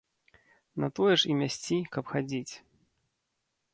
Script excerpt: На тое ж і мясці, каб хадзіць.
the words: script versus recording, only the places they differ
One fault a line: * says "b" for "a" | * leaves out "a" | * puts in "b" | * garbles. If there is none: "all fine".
all fine